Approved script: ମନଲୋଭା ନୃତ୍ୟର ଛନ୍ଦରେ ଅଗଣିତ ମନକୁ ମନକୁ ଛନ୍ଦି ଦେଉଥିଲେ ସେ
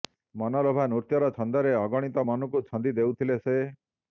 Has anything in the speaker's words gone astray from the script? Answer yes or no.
yes